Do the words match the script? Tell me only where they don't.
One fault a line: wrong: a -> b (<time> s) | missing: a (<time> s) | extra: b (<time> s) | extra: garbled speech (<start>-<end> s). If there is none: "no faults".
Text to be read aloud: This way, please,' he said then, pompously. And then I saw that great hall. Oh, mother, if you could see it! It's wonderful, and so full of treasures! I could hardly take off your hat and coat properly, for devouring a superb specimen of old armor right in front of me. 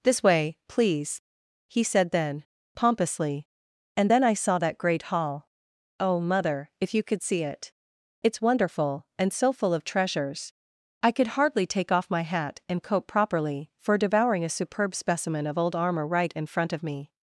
wrong: your -> my (12.1 s)